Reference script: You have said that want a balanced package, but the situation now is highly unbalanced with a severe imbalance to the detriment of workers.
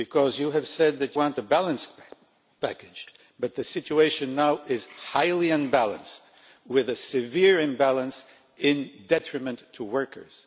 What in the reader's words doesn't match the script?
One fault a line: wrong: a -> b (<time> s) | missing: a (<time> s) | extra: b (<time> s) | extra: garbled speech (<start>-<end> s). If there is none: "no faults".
no faults